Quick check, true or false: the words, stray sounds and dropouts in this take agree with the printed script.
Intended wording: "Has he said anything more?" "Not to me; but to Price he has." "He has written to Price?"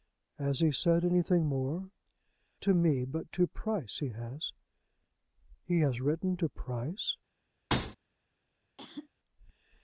false